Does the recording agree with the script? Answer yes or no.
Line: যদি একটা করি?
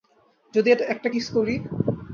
no